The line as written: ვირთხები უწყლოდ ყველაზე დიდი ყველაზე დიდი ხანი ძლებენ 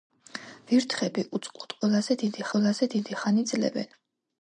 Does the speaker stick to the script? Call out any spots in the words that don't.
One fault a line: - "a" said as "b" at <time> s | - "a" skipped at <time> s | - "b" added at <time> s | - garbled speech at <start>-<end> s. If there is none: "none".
none